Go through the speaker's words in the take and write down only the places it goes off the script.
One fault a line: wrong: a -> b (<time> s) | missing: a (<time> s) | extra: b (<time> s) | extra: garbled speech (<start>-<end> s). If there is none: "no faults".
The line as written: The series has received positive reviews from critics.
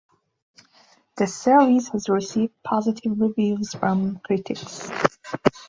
no faults